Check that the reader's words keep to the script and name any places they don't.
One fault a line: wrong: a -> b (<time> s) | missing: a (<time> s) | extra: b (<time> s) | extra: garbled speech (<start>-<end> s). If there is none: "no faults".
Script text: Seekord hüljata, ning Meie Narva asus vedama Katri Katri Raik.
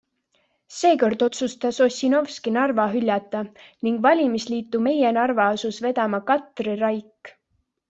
extra: otsustas Ossinovski Narva (1.2 s)
extra: valimisliitu (4.1 s)
missing: Katri (6.8 s)